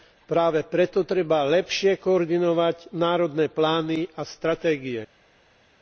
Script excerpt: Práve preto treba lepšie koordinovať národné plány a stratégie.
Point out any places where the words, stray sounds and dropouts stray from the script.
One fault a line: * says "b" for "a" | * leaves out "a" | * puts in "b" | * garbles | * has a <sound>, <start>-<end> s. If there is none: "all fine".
all fine